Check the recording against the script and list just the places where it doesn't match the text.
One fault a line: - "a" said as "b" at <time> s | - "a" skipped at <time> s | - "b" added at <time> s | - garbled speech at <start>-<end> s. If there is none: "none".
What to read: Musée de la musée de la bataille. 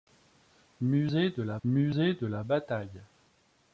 none